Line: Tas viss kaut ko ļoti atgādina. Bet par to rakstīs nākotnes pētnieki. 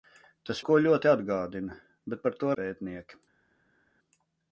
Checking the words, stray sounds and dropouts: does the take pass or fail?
fail